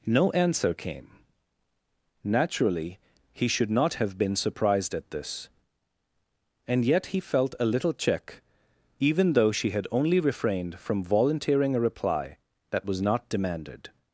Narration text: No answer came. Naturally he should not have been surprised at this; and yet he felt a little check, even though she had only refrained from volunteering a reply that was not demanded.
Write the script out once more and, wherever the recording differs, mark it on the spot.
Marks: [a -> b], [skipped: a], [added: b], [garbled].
No answer came. Naturally he should not have been surprised at this; and yet he felt a little check, even though she had only refrained from volunteering a reply that was not demanded.